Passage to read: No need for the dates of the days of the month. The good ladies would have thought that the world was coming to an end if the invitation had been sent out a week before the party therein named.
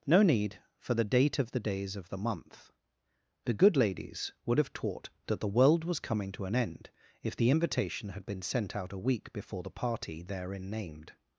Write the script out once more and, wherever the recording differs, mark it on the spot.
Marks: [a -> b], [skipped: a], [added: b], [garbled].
No need for the [dates -> date] of the days of the month. The good ladies would have [thought -> taught] that the world was coming to an end if the invitation had been sent out a week before the party therein named.